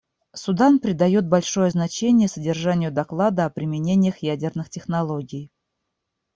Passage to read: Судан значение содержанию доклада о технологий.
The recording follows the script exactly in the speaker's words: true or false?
false